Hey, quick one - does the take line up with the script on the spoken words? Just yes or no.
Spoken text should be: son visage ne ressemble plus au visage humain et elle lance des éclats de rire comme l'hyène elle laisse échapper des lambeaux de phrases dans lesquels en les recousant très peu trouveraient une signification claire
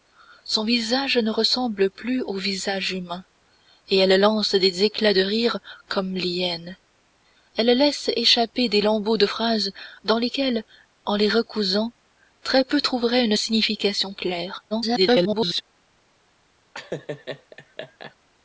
no